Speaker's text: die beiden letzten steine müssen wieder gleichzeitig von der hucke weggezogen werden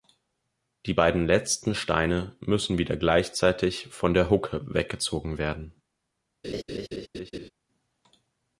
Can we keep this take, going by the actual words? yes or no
yes